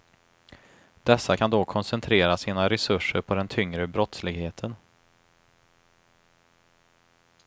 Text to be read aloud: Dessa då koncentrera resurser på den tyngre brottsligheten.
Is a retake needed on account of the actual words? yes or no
yes